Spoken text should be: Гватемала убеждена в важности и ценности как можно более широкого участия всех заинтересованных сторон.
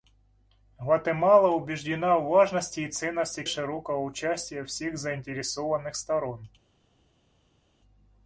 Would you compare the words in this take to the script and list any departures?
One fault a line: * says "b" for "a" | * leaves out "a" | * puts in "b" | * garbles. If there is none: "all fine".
* leaves out "как можно более"